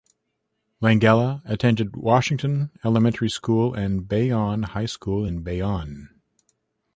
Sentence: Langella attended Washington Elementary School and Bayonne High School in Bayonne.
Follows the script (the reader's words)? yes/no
yes